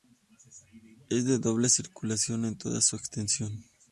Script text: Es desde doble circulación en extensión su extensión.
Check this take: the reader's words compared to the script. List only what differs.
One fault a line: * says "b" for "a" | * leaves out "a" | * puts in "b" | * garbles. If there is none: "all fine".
* says "de" for "desde"
* says "toda" for "extensión"